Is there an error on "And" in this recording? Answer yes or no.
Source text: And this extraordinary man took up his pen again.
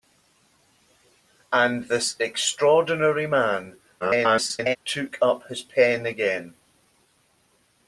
no